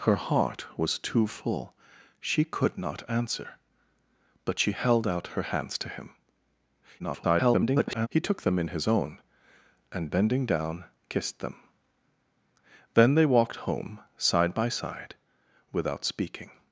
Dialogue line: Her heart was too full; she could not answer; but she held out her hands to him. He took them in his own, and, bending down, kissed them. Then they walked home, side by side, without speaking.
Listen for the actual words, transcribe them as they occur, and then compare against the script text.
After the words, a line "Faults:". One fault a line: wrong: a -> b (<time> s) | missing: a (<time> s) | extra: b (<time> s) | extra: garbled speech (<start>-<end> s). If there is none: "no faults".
Her heart was too full; she could not answer; but she held out her hands to him. [garbled] He took them in his own, and, bending down, kissed them. Then they walked home, side by side, without speaking.
Faults:
extra: garbled speech (7.0-8.1 s)